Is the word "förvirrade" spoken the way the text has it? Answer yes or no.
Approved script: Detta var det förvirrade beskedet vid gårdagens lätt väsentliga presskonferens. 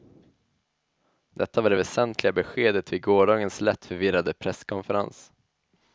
no